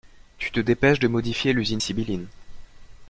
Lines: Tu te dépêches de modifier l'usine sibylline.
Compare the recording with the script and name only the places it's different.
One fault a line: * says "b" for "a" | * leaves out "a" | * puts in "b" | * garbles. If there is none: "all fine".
all fine